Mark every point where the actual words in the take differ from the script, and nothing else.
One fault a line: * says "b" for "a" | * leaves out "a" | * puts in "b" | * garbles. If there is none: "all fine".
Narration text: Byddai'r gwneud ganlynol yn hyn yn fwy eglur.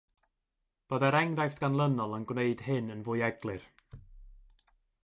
* says "enghraifft" for "gwneud"
* puts in "gwneud"